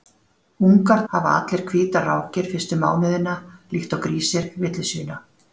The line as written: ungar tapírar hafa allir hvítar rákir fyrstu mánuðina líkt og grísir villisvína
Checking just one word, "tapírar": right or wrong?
wrong